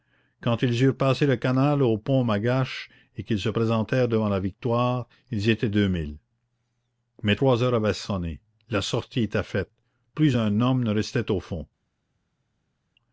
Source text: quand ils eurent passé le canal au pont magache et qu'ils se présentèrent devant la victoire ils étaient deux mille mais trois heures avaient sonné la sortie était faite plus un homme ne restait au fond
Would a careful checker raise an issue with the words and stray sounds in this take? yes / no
no